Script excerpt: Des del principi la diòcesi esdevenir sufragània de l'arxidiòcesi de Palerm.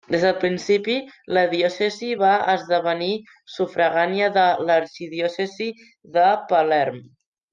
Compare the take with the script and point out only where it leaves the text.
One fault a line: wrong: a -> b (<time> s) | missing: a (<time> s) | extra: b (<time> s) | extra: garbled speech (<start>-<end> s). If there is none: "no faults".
extra: va (2.2 s)